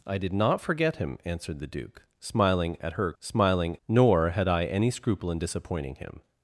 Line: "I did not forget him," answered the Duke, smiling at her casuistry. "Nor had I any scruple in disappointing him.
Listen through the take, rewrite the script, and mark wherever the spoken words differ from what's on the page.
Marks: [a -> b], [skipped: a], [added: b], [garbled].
"I did not forget him," answered the Duke, smiling at her [casuistry. -> smiling] "Nor had I any scruple in disappointing him.